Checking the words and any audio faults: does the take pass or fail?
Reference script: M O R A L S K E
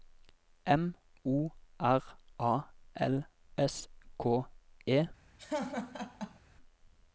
fail